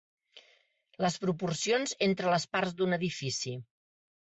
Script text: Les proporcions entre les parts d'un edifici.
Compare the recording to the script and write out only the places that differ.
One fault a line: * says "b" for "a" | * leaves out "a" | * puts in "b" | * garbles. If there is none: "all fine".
all fine